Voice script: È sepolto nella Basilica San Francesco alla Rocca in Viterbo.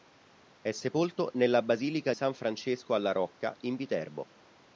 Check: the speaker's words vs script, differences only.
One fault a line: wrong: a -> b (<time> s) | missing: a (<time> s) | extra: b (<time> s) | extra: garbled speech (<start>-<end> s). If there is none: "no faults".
no faults